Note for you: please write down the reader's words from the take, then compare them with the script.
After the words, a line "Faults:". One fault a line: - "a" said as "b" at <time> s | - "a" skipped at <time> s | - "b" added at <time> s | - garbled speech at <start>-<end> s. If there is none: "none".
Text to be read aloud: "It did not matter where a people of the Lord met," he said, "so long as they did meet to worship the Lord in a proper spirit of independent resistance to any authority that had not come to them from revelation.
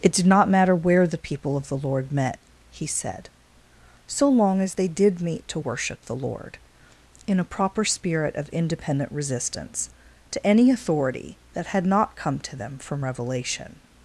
"It did not matter where the people of the Lord met," he said, "so long as they did meet to worship the Lord in a proper spirit of independent resistance to any authority that had not come to them from revelation.
Faults:
- "a" said as "the" at 1.1 s